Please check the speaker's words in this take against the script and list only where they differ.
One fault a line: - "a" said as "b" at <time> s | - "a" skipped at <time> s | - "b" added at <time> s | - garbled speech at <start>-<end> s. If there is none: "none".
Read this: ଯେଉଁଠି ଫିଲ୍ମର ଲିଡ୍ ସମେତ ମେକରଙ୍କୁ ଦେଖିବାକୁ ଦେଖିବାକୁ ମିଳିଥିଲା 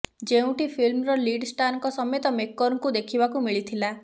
- "ଷ୍ଟାରଙ୍କ" added at 1.5 s
- "ଦେଖିବାକୁ" skipped at 3.5 s